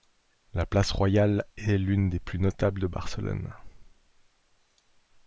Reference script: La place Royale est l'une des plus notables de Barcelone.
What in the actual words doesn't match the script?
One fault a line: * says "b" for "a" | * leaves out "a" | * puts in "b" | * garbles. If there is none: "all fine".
all fine